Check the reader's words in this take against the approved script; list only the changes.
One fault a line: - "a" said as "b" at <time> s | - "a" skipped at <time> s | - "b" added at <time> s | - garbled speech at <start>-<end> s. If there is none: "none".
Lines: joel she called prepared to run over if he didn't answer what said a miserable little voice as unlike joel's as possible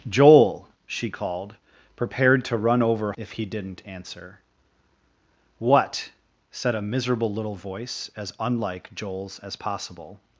none